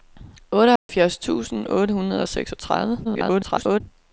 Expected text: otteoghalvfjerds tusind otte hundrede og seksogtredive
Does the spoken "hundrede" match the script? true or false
true